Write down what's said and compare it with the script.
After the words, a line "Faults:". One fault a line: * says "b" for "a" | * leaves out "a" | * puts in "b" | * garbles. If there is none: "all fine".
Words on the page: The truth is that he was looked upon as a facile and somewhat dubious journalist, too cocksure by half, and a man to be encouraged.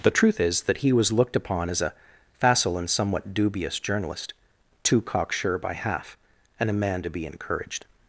The truth is that he was looked upon as a facile and somewhat dubious journalist, too cocksure by half, and a man to be encouraged.
Faults:
all fine